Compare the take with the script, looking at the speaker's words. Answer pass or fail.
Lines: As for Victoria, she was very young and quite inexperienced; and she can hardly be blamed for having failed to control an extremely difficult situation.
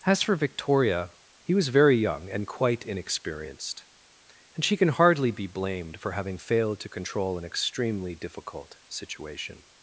fail